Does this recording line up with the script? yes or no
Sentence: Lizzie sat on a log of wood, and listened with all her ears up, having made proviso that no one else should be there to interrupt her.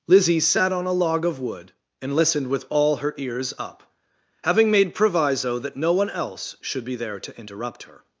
yes